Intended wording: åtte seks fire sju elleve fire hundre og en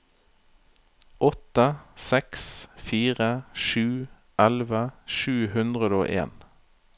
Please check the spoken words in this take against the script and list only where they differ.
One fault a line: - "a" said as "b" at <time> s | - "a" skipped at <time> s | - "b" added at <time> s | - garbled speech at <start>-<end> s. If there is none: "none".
- "fire" said as "sju" at 5.2 s